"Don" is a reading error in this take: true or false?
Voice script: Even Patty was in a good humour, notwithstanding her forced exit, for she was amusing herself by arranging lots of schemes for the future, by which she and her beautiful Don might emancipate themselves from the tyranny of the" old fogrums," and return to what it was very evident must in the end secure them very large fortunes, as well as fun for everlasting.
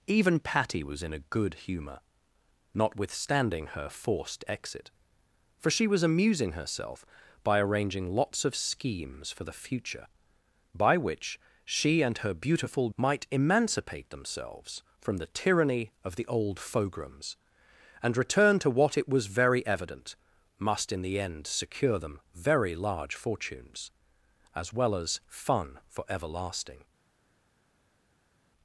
true